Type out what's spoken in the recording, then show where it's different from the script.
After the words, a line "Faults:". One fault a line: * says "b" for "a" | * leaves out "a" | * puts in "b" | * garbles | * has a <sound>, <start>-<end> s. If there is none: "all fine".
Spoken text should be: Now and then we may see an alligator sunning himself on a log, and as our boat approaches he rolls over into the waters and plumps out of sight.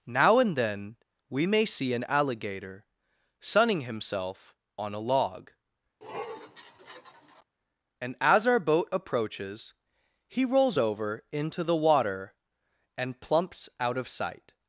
Now and then we may see an alligator sunning himself on a log, and as our boat approaches he rolls over into the water and plumps out of sight.
Faults:
* has a sniff, 6.0-7.4 s
* says "water" for "waters"